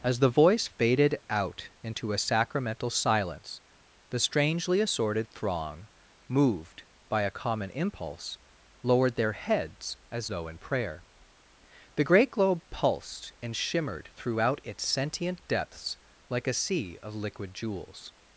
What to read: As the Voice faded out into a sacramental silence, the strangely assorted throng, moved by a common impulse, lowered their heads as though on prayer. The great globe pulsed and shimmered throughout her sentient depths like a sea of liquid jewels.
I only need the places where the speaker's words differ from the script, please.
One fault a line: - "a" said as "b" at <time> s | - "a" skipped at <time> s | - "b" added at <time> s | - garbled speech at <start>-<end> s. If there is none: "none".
- "on" said as "in" at 10.5 s
- "her" said as "its" at 14.6 s